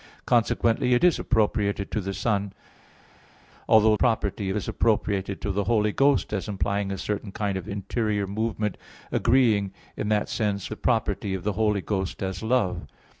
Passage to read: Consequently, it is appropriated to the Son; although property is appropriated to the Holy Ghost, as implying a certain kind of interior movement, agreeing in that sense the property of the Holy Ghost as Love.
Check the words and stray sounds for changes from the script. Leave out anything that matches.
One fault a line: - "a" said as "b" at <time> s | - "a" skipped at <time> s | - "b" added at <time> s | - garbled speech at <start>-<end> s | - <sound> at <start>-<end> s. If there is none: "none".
none